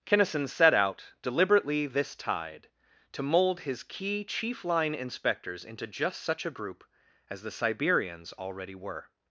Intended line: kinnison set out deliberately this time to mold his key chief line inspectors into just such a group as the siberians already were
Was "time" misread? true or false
true